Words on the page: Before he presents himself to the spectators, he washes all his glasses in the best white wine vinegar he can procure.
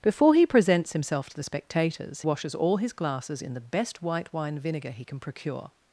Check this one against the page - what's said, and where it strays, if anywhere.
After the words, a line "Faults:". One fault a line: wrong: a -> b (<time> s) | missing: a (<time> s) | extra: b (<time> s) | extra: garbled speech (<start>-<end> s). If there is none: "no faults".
Before he presents himself to the spectators, washes all his glasses in the best white wine vinegar he can procure.
Faults:
missing: he (2.2 s)